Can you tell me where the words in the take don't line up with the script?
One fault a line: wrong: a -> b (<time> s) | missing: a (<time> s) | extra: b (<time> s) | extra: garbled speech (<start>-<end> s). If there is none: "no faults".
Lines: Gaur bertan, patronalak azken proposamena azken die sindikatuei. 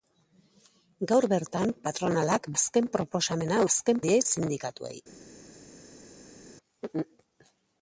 no faults